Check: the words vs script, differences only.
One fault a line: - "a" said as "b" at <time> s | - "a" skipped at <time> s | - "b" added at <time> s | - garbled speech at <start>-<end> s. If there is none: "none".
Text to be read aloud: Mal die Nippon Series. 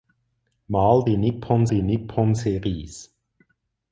- "die Nippon" added at 1.7 s